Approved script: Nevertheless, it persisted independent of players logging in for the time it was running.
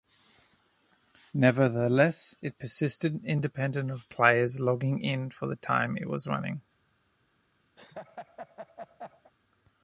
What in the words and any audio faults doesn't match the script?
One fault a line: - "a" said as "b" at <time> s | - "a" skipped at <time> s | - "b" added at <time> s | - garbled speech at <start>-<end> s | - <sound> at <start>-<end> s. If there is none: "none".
- laugh at 7.8-9.3 s